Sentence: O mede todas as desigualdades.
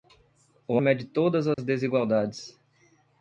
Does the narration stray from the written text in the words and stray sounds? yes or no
yes